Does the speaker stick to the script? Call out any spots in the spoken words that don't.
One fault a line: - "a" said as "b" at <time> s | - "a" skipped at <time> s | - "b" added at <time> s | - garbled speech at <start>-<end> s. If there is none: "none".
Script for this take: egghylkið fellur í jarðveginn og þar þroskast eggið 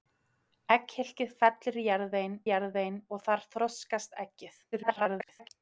- "jarðveginn" added at 2.5 s
- garbled speech at 4.7-5.5 s